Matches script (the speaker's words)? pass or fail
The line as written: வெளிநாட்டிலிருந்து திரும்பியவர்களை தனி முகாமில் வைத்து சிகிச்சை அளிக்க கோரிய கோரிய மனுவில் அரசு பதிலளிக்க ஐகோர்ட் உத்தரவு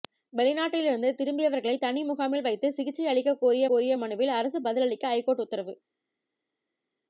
pass